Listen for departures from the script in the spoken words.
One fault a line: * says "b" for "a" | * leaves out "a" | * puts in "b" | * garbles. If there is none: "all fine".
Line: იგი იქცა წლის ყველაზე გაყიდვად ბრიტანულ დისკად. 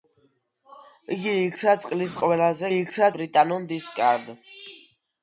* says "იქცა" for "გაყიდვად"